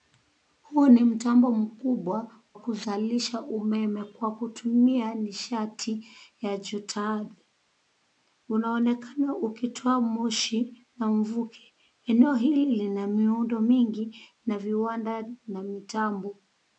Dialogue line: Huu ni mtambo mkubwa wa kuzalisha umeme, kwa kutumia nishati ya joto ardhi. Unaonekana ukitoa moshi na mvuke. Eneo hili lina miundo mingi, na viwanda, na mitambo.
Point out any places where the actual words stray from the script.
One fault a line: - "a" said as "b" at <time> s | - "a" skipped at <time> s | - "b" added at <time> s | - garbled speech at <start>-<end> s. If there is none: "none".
- "wa" skipped at 2.3 s